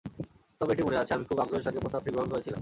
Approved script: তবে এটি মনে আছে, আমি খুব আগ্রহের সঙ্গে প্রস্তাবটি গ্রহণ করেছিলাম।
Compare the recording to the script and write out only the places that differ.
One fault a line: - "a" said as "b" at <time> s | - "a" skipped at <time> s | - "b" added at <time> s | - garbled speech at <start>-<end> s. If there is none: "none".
none